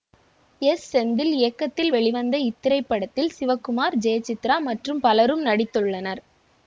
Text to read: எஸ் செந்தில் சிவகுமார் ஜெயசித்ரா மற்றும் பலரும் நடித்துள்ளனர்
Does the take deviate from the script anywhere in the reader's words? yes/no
yes